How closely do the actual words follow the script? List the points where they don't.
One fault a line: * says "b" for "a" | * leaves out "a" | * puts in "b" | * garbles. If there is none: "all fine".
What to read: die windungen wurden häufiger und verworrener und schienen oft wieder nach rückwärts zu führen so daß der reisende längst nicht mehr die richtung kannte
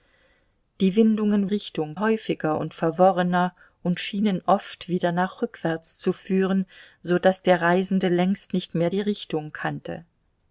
* says "richtung" for "wurden"